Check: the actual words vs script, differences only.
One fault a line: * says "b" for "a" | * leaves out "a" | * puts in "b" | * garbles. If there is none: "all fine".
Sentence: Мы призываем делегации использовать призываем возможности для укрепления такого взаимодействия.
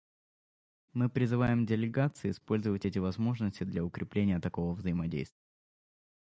* says "эти" for "призываем"